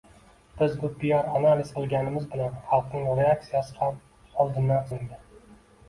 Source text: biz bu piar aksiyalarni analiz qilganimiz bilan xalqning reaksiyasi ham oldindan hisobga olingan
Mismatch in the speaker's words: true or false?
true